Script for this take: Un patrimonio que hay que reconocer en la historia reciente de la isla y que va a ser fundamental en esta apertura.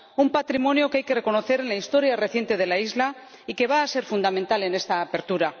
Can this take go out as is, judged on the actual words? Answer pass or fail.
pass